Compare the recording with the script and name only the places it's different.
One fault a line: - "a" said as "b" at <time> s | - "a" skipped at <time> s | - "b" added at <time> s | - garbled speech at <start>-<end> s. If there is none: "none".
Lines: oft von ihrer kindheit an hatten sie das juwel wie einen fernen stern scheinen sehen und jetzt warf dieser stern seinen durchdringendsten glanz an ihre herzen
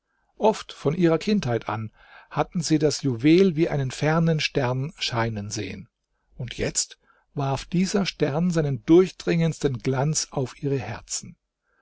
- "an" said as "auf" at 10.3 s